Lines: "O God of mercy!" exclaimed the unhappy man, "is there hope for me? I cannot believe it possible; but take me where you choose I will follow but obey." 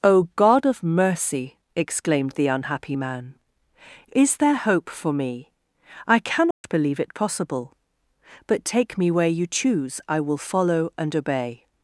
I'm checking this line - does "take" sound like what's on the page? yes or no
yes